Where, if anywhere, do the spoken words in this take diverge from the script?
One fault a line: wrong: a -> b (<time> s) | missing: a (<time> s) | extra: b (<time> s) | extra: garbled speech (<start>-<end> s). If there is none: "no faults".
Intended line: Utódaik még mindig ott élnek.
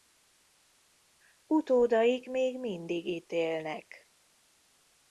wrong: ott -> itt (3.0 s)